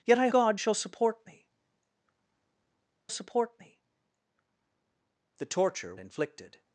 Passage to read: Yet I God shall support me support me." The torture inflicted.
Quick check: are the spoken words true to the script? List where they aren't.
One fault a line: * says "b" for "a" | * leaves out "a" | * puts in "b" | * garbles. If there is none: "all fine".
all fine